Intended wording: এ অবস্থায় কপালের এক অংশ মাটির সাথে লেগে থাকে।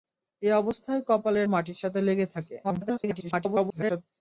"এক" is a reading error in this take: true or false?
true